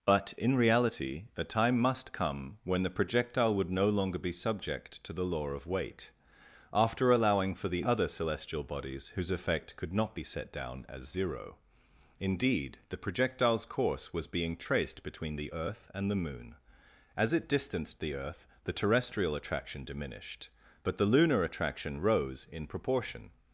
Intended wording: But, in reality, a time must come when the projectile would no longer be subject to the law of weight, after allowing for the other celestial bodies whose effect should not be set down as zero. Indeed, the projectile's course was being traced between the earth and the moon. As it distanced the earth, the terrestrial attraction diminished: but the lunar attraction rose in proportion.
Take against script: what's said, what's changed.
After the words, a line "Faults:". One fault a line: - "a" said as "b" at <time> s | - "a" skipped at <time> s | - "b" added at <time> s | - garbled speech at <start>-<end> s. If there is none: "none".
But, in reality, a time must come when the projectile would no longer be subject to the law of weight, after allowing for the other celestial bodies whose effect could not be set down as zero. Indeed, the projectile's course was being traced between the earth and the moon. As it distanced the earth, the terrestrial attraction diminished: but the lunar attraction rose in proportion.
Faults:
- "should" said as "could" at 9.8 s